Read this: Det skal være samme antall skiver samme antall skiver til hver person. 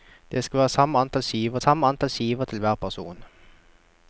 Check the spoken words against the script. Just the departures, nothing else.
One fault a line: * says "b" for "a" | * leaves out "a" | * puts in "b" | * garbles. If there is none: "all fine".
all fine